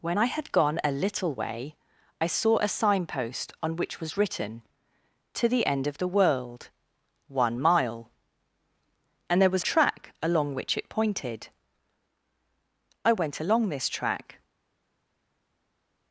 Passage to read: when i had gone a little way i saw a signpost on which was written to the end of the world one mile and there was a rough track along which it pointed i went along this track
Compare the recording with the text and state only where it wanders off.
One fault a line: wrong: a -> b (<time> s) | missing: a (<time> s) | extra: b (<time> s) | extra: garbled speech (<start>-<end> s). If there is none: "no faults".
missing: a rough (9.6 s)